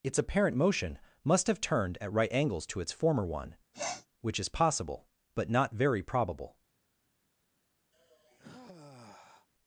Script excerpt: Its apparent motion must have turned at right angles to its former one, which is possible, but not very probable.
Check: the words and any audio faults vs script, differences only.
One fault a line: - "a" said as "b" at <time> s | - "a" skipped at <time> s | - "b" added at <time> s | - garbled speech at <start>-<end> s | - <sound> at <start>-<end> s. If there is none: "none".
- sniff at 3.7-4.1 s
- sigh at 7.9-9.5 s